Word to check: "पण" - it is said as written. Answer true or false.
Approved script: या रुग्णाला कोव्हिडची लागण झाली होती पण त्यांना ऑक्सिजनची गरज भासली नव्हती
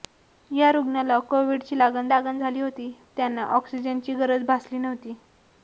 false